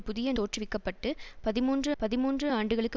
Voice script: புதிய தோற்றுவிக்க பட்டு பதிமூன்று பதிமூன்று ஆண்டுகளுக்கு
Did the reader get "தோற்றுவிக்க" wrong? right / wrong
right